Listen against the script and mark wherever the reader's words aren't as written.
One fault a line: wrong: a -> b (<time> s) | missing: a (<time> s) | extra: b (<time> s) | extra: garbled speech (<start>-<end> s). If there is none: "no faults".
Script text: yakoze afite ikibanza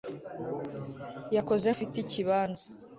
no faults